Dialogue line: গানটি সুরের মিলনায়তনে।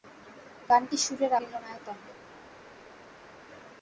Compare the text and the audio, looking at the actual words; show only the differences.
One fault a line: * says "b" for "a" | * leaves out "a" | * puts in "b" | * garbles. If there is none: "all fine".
all fine